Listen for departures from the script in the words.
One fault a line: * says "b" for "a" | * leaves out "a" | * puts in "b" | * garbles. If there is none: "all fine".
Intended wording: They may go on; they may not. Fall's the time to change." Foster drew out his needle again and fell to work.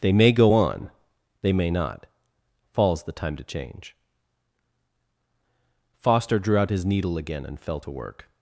all fine